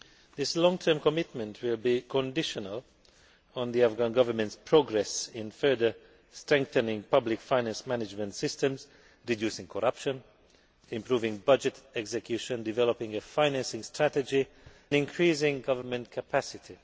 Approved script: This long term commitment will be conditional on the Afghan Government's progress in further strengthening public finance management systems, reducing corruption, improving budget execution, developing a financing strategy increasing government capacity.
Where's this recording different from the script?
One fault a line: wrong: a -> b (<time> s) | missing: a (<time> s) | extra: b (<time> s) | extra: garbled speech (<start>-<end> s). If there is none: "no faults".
no faults